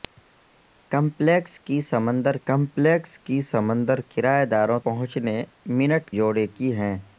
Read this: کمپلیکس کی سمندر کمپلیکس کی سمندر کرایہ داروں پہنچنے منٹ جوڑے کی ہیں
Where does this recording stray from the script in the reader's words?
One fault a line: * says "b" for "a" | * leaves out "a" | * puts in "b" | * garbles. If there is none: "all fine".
all fine